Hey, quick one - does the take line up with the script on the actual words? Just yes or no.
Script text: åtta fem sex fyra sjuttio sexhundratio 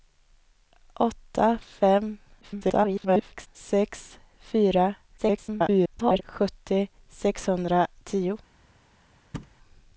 no